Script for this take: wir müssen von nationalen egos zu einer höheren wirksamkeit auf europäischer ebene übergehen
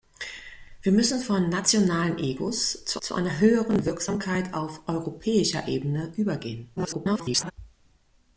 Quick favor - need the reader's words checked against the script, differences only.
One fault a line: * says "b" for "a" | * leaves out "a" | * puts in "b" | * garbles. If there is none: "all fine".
* puts in "zu"
* garbles